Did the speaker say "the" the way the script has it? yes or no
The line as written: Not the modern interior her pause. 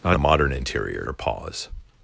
yes